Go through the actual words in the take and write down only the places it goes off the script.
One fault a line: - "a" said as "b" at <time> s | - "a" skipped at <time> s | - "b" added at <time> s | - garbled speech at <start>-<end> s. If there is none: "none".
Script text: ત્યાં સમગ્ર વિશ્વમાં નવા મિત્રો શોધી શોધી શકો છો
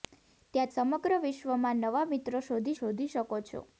none